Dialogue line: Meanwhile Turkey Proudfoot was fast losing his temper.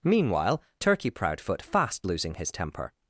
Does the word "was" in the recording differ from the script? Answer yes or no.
yes